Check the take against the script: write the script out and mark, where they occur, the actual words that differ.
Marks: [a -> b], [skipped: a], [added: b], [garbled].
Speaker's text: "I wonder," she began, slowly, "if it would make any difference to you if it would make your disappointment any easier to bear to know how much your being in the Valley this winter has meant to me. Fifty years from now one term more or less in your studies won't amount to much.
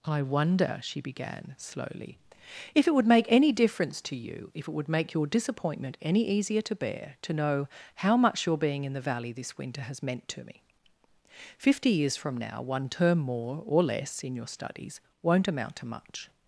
"I wonder," she began, slowly, "if it would make any difference to you if it would make your disappointment any easier to bear to know how much your being in the Valley this winter has meant to me. Fifty years from now one term more or less in your studies won't amount to much.